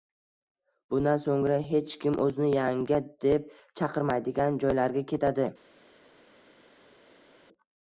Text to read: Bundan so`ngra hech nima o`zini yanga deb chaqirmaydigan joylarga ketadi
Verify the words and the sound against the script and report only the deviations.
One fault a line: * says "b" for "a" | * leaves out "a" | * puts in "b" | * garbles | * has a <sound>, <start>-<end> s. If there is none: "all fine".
* says "kim" for "nima"